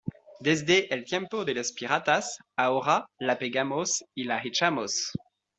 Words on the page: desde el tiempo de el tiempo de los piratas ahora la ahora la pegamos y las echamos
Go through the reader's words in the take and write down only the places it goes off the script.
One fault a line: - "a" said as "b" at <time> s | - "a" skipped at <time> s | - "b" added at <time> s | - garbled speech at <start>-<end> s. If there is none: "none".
- "el tiempo de" skipped at 1.5 s
- "ahora la" skipped at 3.4 s
- "las" said as "la" at 4.2 s